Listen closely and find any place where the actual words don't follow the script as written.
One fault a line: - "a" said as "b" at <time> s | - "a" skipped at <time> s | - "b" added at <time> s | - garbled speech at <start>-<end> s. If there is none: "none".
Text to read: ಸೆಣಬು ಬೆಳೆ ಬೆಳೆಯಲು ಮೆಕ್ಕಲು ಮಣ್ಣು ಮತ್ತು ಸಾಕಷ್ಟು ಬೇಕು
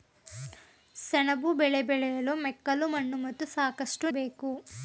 none